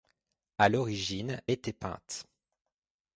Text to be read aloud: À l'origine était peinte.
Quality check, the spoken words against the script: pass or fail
pass